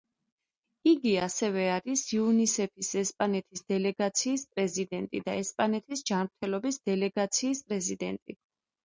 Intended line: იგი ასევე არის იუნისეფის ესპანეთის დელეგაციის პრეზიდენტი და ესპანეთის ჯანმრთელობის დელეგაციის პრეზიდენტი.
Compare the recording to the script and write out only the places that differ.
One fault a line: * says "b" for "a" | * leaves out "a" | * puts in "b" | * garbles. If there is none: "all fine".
all fine